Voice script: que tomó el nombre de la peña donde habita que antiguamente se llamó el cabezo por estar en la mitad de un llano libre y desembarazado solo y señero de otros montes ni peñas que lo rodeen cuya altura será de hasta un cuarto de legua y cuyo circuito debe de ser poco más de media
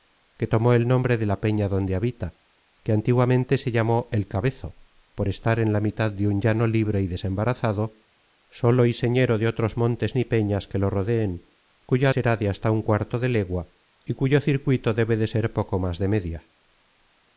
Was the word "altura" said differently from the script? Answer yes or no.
yes